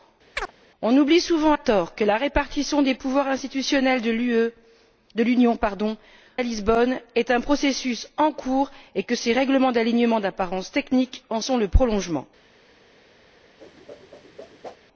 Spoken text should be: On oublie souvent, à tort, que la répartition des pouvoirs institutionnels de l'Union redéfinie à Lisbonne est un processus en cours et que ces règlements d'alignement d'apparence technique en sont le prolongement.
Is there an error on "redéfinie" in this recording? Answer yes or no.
yes